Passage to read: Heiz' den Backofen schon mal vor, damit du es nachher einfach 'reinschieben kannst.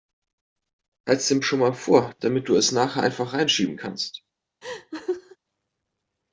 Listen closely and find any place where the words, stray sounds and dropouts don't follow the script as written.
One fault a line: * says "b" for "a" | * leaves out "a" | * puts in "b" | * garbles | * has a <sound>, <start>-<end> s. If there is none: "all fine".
* leaves out "Backofen"
* has a laugh, 4.6-5.4 s